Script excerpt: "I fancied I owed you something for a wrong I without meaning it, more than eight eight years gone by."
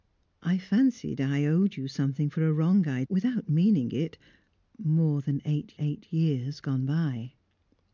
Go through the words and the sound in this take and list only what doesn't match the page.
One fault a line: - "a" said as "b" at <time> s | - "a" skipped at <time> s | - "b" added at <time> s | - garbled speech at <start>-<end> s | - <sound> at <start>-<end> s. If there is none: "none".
none